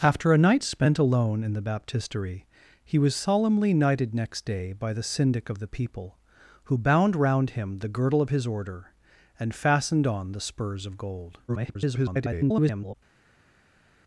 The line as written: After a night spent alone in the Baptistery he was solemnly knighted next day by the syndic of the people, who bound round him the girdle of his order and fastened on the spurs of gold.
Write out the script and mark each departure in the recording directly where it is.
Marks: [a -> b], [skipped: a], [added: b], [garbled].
After a night spent alone in the Baptistery he was solemnly knighted next day by the syndic of the people, who bound round him the girdle of his order and fastened on the spurs of gold. [garbled]